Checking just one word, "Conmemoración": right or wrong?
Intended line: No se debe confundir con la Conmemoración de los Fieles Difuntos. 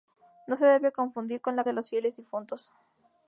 wrong